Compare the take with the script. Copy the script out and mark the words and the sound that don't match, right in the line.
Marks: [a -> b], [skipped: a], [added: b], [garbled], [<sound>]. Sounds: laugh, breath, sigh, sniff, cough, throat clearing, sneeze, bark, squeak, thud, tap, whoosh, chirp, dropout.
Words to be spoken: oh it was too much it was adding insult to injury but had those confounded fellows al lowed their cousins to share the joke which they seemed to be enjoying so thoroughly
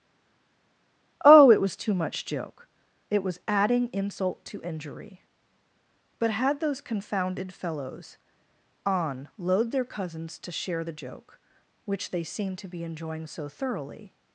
oh it was too much [added: joke] it was adding insult to injury but had those confounded fellows [al lowed -> on load] their cousins to share the joke which they seemed to be enjoying so thoroughly